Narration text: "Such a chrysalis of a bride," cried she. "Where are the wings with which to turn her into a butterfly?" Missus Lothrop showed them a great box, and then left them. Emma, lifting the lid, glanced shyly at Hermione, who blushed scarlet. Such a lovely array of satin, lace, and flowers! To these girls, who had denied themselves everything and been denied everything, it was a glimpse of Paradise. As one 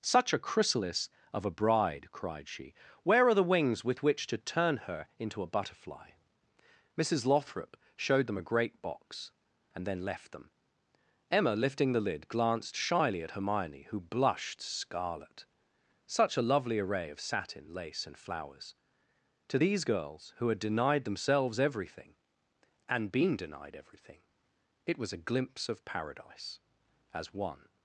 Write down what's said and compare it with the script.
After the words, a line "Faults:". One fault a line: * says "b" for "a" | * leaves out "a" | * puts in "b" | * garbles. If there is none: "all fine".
"Such a chrysalis of a bride," cried she. "Where are the wings with which to turn her into a butterfly?" Missus Lothrop showed them a great box, and then left them. Emma, lifting the lid, glanced shyly at Hermione, who blushed scarlet. Such a lovely array of satin, lace, and flowers! To these girls, who had denied themselves everything and been denied everything, it was a glimpse of Paradise. As one
Faults:
all fine